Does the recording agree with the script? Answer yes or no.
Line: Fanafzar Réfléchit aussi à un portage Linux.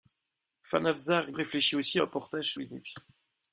yes